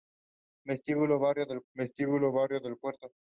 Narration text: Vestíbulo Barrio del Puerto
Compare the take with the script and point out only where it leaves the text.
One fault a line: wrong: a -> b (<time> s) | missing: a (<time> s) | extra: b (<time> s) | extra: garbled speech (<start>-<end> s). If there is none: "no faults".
extra: vestíbulo Barrio del (1.7 s)